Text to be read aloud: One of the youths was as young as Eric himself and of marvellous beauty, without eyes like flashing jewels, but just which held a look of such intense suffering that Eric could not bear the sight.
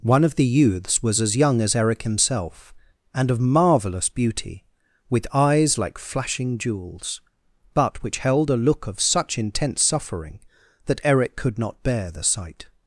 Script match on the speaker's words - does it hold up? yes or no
no